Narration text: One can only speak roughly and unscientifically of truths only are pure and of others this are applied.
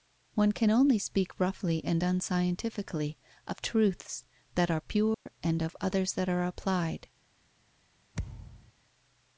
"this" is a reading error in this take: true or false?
true